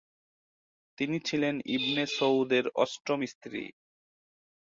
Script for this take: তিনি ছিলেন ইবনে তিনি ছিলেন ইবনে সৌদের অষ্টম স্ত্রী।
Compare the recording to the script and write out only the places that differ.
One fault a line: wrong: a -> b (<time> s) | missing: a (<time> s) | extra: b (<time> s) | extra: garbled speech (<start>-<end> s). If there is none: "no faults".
missing: তিনি ছিলেন ইবনে (2.0 s)